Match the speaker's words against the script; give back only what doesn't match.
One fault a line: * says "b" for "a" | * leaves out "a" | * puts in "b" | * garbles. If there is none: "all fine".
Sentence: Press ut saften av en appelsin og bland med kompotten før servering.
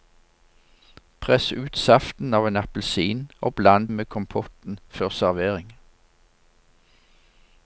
all fine